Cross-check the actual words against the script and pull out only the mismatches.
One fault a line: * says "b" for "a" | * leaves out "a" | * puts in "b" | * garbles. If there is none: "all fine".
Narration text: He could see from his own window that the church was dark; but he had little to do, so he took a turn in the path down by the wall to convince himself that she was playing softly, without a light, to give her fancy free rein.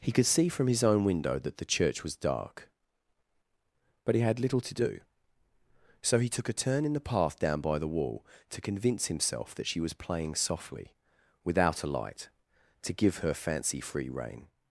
all fine